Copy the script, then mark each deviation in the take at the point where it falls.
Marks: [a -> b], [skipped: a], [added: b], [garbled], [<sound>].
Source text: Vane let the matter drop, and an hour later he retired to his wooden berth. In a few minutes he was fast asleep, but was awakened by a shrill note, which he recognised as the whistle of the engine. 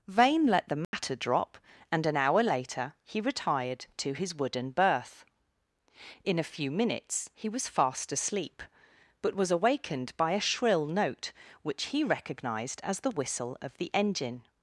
Vane let the matter [dropout] drop, and an hour later he retired to his wooden berth. In a few minutes he was fast asleep, but was awakened by a shrill note, which he recognised as the whistle of the engine.